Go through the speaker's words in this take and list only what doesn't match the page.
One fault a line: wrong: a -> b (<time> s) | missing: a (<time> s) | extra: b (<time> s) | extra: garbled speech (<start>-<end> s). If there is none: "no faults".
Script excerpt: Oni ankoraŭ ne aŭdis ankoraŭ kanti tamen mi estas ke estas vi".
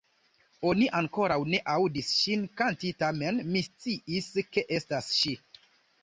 wrong: ankoraŭ -> ŝin (2.2 s)
wrong: estas -> sciis (3.7 s)
wrong: vi -> ŝi (5.2 s)